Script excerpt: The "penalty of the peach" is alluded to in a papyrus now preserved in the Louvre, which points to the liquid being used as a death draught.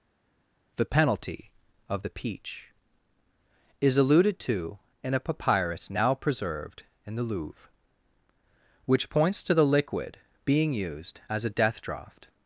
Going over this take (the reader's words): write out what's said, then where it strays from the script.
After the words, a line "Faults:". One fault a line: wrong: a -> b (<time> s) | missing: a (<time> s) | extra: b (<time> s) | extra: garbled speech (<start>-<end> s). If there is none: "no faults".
The "penalty of the peach" is alluded to in a papyrus now preserved in the Louvre, which points to the liquid being used as a death draught.
Faults:
no faults